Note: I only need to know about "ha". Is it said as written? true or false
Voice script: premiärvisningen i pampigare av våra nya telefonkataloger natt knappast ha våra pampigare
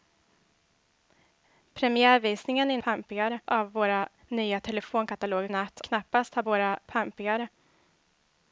true